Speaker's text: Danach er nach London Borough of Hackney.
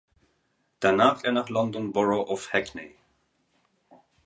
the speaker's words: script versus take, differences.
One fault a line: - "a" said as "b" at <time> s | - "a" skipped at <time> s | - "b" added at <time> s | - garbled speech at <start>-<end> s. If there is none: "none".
none